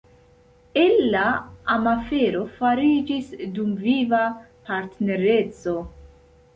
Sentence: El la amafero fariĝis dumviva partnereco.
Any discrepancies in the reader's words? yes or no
no